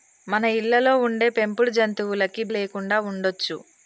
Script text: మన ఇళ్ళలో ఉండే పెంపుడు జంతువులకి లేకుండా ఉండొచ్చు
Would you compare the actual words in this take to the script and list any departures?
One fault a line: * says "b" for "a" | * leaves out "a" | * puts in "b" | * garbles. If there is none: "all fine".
all fine